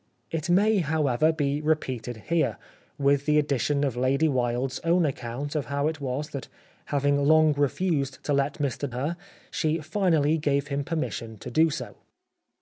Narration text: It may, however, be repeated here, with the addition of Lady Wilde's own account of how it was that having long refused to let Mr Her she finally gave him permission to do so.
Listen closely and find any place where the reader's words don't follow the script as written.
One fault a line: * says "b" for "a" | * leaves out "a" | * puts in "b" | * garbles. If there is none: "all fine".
all fine